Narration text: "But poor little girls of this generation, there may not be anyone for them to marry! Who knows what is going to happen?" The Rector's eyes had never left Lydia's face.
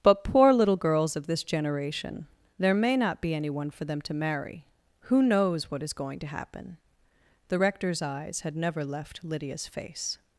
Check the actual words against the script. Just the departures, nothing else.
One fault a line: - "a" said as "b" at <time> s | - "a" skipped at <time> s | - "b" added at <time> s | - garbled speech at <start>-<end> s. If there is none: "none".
none